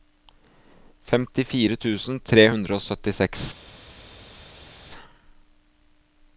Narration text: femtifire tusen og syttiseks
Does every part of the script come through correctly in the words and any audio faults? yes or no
no